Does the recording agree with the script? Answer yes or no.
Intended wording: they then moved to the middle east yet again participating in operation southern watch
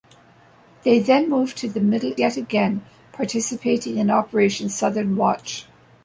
no